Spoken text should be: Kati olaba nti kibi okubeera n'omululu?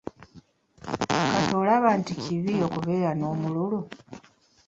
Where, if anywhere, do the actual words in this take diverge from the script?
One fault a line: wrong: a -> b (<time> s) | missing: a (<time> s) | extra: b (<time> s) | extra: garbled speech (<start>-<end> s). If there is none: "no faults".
no faults